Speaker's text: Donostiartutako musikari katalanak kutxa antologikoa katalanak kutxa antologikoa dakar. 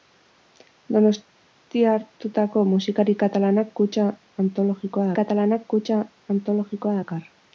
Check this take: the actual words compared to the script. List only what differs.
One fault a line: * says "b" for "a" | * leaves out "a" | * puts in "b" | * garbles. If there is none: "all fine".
all fine